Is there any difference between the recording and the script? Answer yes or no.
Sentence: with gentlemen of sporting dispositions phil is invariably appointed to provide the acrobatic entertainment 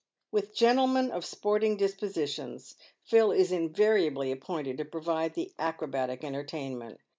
no